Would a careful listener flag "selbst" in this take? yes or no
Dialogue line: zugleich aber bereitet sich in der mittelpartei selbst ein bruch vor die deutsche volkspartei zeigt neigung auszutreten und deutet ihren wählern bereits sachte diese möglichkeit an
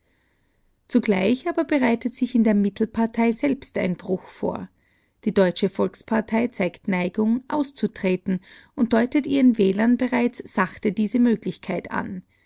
no